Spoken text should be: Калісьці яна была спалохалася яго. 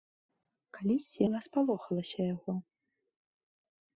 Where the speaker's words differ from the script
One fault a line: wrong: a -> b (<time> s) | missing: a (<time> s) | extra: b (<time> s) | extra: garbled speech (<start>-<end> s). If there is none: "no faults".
missing: яна (1.2 s)